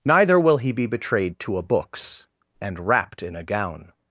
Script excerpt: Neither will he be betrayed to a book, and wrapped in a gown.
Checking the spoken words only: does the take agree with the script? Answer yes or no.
no